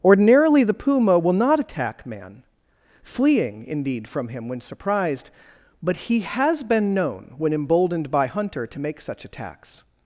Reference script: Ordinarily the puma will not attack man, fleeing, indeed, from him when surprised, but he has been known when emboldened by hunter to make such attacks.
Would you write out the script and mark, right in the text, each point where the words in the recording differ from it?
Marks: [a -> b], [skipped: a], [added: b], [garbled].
Ordinarily the puma will not attack man, fleeing, indeed, from him when surprised, but he has been known when emboldened by hunter to make such attacks.